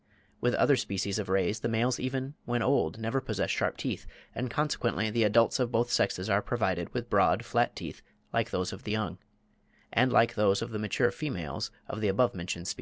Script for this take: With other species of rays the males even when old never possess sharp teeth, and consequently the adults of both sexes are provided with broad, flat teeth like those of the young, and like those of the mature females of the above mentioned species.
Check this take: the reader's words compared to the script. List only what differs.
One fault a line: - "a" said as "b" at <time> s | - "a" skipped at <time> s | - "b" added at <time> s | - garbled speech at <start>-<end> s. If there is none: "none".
none